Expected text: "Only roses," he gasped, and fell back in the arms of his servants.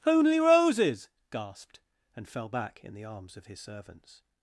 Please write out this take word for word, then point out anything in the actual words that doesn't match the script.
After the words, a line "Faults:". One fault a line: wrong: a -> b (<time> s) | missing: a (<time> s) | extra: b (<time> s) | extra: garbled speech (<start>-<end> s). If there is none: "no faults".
"Only roses," gasped, and fell back in the arms of his servants.
Faults:
missing: he (1.1 s)